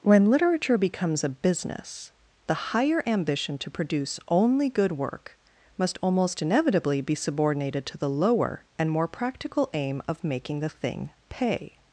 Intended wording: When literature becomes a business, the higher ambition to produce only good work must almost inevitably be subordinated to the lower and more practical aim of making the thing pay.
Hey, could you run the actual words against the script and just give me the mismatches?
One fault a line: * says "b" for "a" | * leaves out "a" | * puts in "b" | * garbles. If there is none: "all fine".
all fine